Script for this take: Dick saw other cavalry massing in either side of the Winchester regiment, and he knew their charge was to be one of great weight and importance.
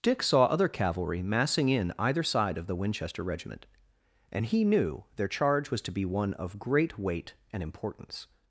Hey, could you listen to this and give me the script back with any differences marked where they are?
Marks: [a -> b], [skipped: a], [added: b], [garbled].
Dick saw other cavalry massing in either side of the Winchester regiment, and he knew their charge was to be one of great weight and importance.